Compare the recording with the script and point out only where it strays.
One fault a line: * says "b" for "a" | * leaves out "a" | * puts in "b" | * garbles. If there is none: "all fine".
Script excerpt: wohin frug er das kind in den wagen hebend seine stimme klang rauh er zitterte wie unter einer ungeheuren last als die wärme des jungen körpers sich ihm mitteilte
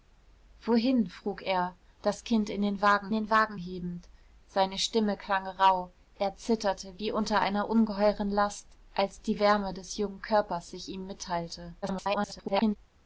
* puts in "den wagen"
* garbles